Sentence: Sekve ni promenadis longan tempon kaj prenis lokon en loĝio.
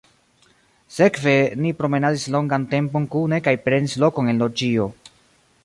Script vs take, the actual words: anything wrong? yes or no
yes